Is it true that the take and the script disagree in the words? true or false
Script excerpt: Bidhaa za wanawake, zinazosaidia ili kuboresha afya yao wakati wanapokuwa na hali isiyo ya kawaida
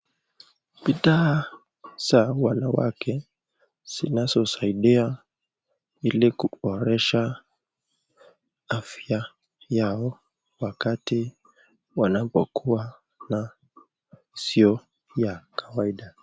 true